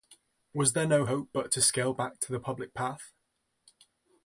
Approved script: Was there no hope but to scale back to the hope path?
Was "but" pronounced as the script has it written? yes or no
yes